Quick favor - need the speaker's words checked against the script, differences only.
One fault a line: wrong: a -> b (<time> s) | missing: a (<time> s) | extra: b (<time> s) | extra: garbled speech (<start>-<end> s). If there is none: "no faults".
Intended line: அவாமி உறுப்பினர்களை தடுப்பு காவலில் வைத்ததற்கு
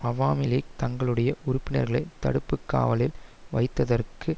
extra: லீக் தங்களுடைய (0.4 s)